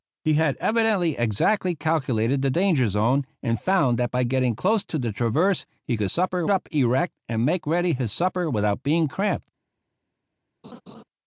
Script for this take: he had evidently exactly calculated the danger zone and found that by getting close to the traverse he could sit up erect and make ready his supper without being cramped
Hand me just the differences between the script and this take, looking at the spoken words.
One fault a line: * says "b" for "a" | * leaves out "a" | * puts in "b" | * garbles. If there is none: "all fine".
* says "supper" for "sit"